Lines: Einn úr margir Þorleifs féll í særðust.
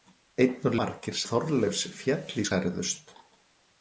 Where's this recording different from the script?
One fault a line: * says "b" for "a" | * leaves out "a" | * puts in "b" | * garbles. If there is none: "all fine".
all fine